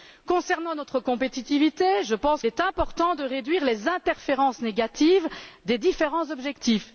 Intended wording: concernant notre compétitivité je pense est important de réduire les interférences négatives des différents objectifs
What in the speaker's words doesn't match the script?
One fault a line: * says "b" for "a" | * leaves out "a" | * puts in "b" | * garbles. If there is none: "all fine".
all fine